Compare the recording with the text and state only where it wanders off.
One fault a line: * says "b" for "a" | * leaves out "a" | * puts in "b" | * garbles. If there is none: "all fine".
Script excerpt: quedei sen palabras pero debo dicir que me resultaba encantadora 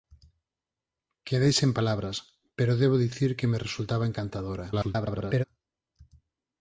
* garbles